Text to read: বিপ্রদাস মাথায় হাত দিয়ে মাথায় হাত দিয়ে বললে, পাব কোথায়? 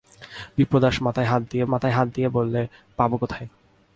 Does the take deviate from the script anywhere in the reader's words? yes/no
no